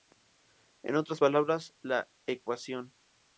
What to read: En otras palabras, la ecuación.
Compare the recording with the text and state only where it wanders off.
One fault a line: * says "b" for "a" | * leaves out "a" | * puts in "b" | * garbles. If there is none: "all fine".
all fine